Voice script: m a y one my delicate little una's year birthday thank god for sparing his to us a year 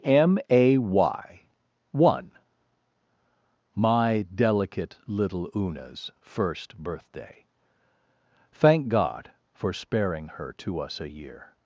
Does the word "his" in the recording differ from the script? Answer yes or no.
yes